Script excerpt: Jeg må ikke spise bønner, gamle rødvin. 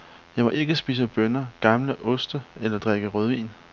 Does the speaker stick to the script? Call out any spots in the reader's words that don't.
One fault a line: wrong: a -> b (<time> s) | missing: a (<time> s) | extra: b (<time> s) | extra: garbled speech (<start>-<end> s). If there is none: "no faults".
extra: oste eller drikke (2.0 s)